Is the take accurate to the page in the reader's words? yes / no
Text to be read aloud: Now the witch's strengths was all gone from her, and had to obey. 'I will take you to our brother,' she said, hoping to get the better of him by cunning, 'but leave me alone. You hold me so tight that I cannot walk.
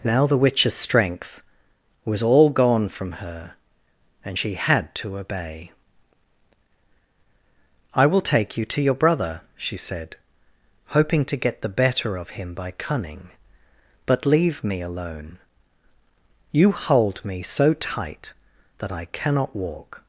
no